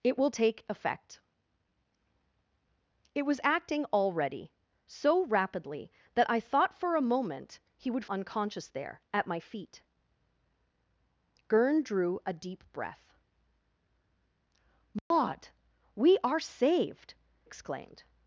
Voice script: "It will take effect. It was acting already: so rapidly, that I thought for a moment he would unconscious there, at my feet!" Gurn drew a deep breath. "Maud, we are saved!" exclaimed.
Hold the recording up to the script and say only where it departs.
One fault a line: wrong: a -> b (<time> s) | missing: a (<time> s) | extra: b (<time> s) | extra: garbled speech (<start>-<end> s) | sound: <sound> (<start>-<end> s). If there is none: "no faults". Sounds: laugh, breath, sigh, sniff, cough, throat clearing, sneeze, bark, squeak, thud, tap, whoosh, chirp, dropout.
sound: dropout (15.0-15.1 s)